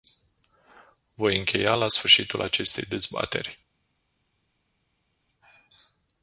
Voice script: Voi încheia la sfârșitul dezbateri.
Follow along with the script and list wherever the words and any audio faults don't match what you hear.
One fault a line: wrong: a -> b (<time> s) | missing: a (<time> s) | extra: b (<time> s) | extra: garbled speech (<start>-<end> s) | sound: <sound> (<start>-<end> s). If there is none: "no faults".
extra: acestei (2.4 s)